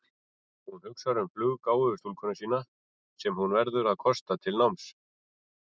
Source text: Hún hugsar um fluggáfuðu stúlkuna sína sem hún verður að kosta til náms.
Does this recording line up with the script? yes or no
yes